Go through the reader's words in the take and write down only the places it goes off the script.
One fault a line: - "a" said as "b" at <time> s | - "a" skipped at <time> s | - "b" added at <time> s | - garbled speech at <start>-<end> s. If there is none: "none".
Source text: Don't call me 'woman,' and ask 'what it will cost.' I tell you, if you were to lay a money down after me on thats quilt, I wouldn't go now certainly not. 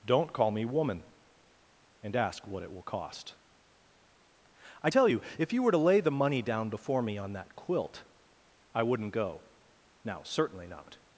- "a" said as "the" at 6.0 s
- "after" said as "before" at 6.7 s
- "thats" said as "that" at 7.3 s